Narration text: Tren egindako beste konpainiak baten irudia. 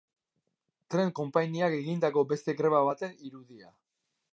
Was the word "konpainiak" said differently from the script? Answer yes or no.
yes